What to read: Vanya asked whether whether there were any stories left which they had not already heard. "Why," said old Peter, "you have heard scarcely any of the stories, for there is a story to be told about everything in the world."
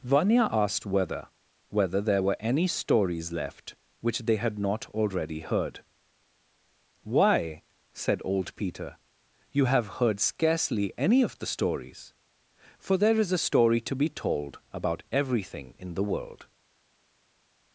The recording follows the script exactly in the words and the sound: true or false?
true